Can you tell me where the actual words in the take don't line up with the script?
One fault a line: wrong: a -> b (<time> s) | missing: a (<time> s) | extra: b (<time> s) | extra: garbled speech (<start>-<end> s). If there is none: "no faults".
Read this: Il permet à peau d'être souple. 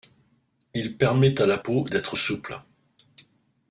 extra: la (1.4 s)